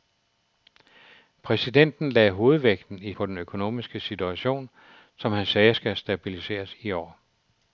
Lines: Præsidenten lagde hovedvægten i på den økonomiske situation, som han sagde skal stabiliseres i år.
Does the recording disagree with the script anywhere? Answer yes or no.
no